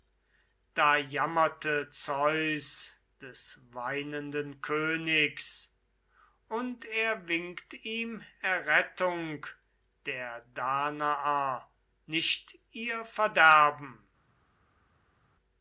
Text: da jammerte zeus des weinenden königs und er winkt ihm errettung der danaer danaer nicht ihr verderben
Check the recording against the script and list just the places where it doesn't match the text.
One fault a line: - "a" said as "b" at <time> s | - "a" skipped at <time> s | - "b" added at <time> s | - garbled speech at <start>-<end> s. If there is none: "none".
- "danaer" skipped at 11.7 s